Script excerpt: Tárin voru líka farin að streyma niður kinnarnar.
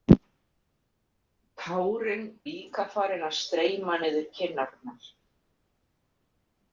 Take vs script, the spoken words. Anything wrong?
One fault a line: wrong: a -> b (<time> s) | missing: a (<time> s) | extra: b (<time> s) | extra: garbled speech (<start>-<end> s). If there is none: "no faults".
missing: voru (2.2 s)